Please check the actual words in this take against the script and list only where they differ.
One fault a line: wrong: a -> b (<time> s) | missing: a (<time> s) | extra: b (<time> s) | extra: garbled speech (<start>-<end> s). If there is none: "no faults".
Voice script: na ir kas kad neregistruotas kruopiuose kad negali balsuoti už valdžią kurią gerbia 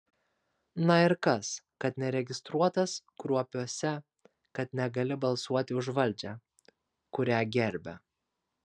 no faults